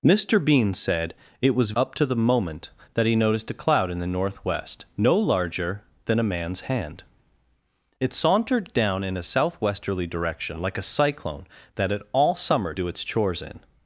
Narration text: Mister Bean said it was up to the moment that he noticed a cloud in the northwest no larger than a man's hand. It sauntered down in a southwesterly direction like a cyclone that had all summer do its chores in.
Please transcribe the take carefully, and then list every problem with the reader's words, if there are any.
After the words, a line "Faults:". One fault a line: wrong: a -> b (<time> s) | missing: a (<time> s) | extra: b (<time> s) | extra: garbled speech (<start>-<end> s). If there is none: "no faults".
Mister Bean said it was up to the moment that he noticed a cloud in the northwest no larger than a man's hand. It sauntered down in a southwesterly direction like a cyclone that had all summer do its chores in.
Faults:
no faults